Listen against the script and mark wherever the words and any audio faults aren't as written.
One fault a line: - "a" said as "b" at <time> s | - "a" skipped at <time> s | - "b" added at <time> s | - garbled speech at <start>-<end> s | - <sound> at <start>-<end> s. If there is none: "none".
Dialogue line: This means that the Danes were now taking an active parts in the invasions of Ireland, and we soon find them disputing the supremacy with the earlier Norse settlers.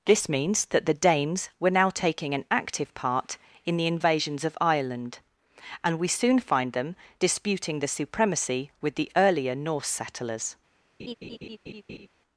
- "parts" said as "part" at 3.0 s
- laugh at 11.0-12.1 s